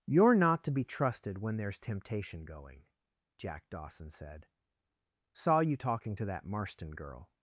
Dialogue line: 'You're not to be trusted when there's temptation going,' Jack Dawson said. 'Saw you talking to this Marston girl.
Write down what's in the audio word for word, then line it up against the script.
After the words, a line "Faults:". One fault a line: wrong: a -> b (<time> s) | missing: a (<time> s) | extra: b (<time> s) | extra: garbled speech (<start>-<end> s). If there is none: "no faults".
'You're not to be trusted when there's temptation going,' Jack Dawson said. 'Saw you talking to that Marston girl.
Faults:
wrong: this -> that (6.2 s)